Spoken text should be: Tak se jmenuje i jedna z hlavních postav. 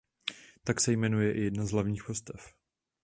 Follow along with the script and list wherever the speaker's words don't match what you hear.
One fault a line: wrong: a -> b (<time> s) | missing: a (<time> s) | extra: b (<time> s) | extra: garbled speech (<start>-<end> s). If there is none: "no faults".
no faults